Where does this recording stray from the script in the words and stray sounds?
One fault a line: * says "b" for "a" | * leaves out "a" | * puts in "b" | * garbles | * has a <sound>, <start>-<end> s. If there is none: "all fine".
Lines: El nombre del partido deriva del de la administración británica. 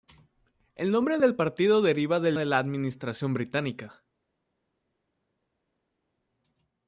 all fine